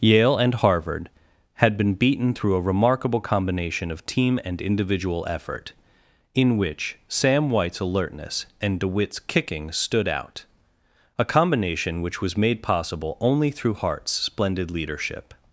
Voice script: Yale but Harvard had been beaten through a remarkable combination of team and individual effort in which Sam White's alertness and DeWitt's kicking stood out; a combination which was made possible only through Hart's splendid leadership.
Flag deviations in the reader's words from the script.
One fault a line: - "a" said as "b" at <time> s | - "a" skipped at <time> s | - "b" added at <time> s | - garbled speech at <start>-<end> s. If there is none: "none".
- "but" said as "and" at 0.3 s